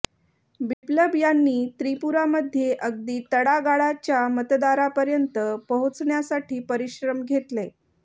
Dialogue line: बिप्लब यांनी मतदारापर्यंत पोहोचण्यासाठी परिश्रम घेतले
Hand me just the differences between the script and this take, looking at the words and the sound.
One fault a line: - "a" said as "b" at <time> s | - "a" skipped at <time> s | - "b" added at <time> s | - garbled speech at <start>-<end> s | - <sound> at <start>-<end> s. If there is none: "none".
- dropout at 0.7-0.8 s
- "त्रिपुरामध्ये अगदी तळागाळाच्या" added at 1.8 s